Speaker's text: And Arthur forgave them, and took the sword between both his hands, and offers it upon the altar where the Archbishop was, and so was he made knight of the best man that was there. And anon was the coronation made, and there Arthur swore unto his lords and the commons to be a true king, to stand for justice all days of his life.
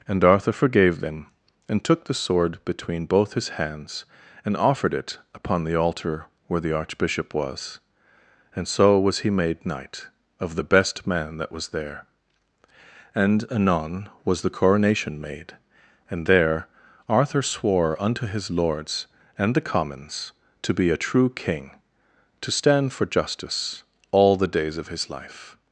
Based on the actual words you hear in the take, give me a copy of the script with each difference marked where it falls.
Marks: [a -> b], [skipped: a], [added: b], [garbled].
And Arthur forgave them, and took the sword between both his hands, and [offers -> offered] it upon the altar where the Archbishop was, and so was he made knight of the best man that was there. And anon was the coronation made, and there Arthur swore unto his lords and the commons to be a true king, to stand for justice all [added: the] days of his life.